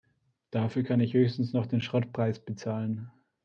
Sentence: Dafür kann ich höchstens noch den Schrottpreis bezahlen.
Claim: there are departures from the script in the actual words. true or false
false